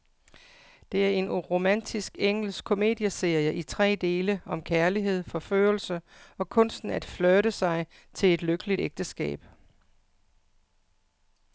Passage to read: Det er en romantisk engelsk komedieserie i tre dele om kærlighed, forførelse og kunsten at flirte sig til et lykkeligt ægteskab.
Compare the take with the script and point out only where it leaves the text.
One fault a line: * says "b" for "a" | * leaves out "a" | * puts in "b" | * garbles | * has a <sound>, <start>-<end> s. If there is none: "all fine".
all fine